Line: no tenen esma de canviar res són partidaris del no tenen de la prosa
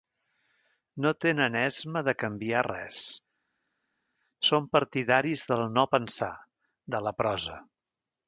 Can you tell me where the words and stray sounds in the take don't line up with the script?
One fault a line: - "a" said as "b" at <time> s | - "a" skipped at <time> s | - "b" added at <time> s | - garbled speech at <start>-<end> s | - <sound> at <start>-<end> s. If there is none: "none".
- "tenen" said as "pensar" at 6.0 s